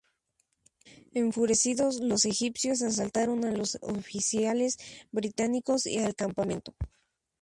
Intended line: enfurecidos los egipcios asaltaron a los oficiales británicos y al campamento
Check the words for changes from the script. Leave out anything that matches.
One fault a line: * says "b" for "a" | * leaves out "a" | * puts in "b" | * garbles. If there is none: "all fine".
all fine